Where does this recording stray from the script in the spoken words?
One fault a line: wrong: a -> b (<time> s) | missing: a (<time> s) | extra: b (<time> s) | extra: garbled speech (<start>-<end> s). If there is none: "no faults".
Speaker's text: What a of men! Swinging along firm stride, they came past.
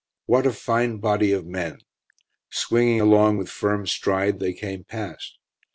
extra: fine body (0.5 s)
extra: with (3.4 s)